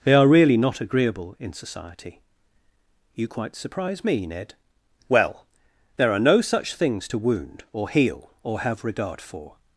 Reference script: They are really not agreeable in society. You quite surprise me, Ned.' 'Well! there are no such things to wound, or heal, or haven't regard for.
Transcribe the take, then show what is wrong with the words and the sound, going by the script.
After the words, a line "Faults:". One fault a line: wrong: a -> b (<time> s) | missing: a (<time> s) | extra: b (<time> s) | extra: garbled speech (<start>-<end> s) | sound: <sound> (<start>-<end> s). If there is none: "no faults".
They are really not agreeable in society. You quite surprise me, Ned.' 'Well! there are no such things to wound, or heal, or have regard for.
Faults:
wrong: haven't -> have (8.6 s)